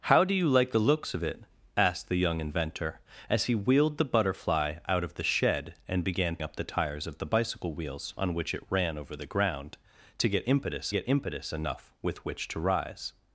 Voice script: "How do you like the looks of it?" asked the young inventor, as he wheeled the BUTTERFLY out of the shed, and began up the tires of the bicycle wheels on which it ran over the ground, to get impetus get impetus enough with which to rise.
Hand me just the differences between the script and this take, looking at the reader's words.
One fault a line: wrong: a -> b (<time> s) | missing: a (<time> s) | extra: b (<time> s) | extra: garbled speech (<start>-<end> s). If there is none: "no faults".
no faults